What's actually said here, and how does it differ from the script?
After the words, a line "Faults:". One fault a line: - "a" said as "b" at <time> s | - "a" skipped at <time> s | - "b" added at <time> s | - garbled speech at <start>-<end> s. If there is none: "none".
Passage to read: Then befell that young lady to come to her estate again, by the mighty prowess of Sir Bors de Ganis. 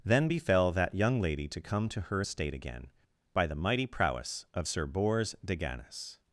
Then befell that young lady to come to her estate again, by the mighty prowess of Sir Bors de Ganis.
Faults:
none